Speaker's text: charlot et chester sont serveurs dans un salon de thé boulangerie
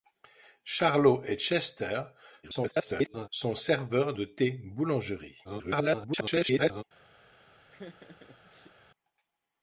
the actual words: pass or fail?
fail